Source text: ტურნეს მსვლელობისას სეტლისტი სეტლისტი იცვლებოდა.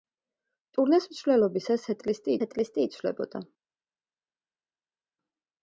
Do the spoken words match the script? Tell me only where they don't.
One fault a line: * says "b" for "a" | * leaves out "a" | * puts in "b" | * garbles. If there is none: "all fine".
all fine